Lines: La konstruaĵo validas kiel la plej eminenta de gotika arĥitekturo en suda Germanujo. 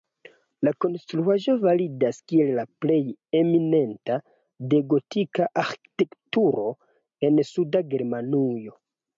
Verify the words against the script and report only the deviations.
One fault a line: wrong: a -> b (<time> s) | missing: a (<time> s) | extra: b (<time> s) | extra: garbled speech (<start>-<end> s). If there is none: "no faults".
no faults